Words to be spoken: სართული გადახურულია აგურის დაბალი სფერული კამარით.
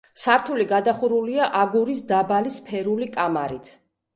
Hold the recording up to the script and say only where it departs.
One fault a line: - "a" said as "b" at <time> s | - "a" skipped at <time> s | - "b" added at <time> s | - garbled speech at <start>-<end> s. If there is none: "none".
none